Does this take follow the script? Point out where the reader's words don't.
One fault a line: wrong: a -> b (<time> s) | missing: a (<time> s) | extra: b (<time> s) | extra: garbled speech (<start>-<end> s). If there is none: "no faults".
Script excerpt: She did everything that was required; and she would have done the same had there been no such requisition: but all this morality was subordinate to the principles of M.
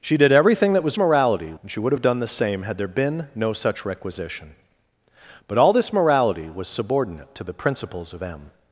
wrong: required -> morality (1.0 s)